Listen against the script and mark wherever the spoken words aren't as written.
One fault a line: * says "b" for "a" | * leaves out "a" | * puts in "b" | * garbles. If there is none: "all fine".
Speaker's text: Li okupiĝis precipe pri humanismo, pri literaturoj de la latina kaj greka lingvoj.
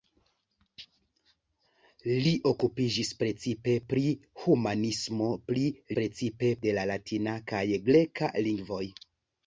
* says "precipe" for "literaturoj"